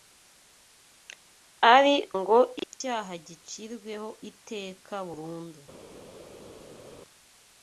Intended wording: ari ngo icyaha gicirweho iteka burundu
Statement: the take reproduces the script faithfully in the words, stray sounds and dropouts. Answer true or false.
true